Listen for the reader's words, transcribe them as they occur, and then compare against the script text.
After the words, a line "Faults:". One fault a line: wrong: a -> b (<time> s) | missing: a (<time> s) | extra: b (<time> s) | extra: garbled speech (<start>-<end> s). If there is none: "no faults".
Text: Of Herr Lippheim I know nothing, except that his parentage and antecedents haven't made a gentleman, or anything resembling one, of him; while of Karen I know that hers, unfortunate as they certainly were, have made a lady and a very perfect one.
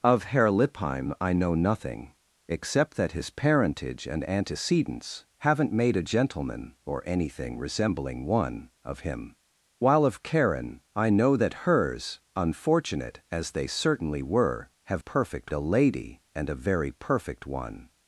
Of Herr Lippheim I know nothing, except that his parentage and antecedents haven't made a gentleman, or anything resembling one, of him; while of Karen I know that hers, unfortunate as they certainly were, have perfect a lady and a very perfect one.
Faults:
wrong: made -> perfect (15.0 s)